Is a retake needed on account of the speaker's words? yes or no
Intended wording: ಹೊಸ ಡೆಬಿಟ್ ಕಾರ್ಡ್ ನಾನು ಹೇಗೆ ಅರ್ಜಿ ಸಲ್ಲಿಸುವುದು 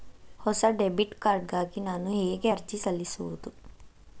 yes